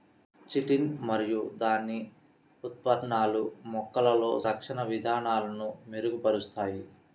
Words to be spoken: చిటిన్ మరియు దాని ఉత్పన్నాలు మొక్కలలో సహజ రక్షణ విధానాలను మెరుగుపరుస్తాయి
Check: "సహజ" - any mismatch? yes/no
yes